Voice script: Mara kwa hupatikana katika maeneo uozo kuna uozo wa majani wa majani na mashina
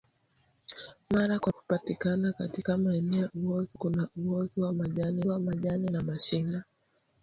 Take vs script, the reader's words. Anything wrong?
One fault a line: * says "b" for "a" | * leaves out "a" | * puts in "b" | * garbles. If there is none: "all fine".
all fine